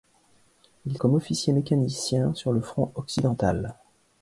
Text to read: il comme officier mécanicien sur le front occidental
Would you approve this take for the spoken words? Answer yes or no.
yes